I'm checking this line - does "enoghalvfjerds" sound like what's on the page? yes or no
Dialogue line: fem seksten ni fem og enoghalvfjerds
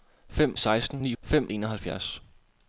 yes